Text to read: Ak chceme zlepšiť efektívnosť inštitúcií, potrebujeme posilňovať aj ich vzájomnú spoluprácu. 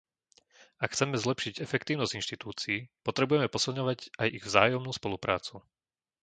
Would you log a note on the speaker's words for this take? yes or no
no